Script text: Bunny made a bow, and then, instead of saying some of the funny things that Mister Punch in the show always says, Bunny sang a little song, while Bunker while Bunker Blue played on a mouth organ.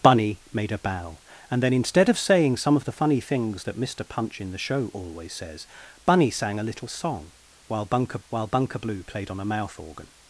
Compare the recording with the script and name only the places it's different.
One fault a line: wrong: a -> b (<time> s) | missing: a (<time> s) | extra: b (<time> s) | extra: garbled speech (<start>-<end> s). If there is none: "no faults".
no faults